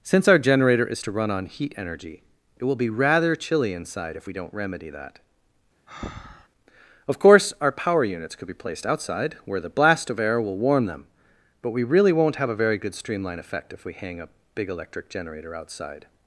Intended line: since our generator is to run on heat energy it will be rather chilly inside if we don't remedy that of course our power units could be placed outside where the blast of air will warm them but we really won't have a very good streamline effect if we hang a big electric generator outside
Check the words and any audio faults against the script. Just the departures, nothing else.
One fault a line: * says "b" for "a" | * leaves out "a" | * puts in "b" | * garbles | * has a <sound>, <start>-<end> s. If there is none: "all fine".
* has a breath, 5.9-6.5 s